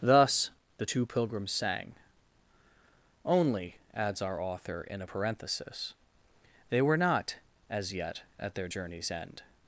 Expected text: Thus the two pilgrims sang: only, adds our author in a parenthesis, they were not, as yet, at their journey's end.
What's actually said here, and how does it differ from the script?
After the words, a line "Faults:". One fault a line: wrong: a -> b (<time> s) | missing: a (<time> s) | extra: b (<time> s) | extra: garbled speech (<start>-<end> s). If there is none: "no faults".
Thus the two pilgrims sang: only, adds our author in a parenthesis, they were not, as yet, at their journey's end.
Faults:
no faults